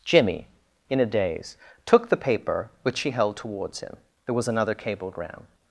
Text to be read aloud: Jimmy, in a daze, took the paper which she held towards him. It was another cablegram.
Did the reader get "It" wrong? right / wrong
wrong